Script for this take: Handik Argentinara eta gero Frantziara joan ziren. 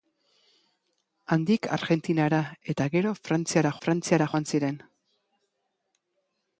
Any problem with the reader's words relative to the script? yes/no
yes